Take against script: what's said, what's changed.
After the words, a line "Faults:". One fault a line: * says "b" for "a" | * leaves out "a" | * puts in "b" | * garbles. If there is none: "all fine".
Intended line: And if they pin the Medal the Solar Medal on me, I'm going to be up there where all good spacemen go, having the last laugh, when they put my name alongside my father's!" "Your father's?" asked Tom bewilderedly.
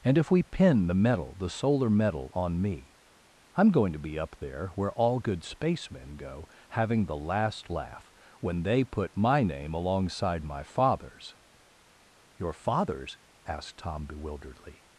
And if we pin the Medal the Solar Medal on me, I'm going to be up there where all good spacemen go, having the last laugh, when they put my name alongside my father's!" "Your father's?" asked Tom bewilderedly.
Faults:
* says "we" for "they"